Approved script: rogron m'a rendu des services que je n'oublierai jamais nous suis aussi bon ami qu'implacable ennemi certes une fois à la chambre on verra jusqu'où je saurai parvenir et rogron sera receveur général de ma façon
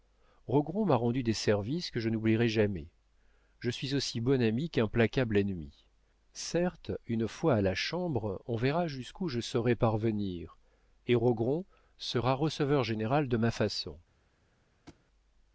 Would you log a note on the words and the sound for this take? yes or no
yes